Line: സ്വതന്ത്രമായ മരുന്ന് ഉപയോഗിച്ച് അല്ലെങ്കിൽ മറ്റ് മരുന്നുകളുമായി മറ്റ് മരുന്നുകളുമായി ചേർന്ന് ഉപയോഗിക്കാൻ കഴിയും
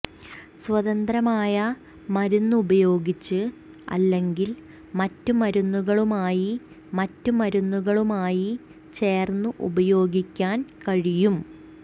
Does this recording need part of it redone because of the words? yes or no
no